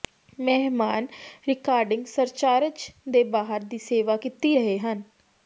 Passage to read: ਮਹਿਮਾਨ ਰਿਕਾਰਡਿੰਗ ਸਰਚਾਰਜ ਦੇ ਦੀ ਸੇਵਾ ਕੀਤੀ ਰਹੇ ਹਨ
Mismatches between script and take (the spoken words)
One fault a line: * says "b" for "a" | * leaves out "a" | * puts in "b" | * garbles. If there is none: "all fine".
* puts in "ਬਾਹਰ"